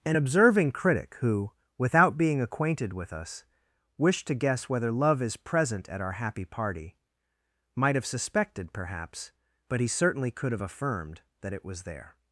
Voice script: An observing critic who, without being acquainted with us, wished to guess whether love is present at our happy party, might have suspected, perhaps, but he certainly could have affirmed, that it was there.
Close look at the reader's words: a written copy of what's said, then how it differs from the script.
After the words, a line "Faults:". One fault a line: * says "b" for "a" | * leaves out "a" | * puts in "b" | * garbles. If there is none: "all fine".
An observing critic who, without being acquainted with us, wished to guess whether love is present at our happy party, might have suspected, perhaps, but he certainly could have affirmed, that it was there.
Faults:
all fine